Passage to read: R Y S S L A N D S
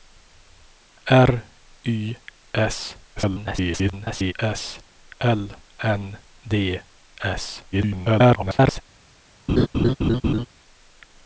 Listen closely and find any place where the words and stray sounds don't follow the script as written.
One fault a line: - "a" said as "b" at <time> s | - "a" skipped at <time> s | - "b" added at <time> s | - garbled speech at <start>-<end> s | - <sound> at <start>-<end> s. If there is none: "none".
- garbled speech at 3.2-4.3 s
- "A" skipped at 5.5 s
- garbled speech at 7.7-8.8 s
- laugh at 9.5-10.5 s